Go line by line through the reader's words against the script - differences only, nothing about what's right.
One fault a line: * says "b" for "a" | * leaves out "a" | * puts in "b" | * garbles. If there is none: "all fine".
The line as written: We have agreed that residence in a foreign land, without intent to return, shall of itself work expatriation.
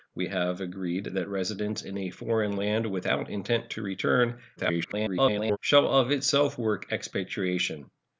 * garbles